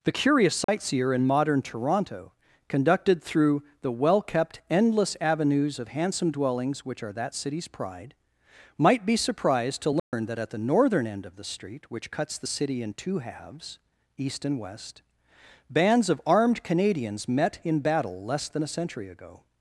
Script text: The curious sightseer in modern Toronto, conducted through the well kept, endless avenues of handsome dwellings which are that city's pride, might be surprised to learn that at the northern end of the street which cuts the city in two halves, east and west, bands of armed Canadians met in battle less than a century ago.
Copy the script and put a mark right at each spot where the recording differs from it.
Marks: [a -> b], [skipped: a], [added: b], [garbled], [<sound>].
The curious sightseer [dropout] in modern Toronto, conducted through the well kept, endless avenues of handsome dwellings which are that city's pride, might be surprised to learn [dropout] that at the northern end of the street which cuts the city in two halves, east and west, bands of armed Canadians met in battle less than a century ago.